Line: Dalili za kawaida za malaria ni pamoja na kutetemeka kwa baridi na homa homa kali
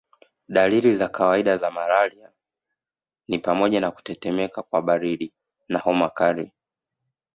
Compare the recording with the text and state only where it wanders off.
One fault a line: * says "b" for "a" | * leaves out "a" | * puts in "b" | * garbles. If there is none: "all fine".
* leaves out "homa"